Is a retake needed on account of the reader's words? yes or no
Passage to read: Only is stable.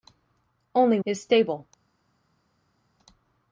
no